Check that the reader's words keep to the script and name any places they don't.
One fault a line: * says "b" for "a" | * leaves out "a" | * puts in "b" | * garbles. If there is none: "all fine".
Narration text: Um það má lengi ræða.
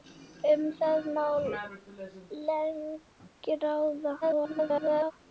* garbles